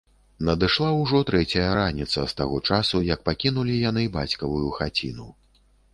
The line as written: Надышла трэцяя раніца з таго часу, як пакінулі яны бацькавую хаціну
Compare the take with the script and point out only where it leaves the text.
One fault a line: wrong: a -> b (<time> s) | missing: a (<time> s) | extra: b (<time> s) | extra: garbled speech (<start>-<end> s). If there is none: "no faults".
extra: ўжо (1.0 s)